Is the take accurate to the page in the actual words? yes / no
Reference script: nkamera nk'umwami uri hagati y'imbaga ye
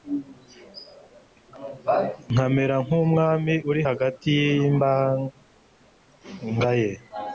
yes